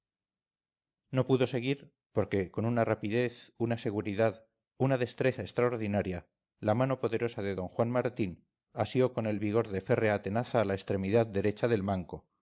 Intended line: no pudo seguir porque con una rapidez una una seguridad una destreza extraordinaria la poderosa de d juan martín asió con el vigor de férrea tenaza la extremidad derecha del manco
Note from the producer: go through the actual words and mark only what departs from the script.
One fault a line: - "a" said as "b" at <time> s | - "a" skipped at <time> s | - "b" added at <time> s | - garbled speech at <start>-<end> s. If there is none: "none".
- "una" skipped at 3.8 s
- "mano" added at 6.7 s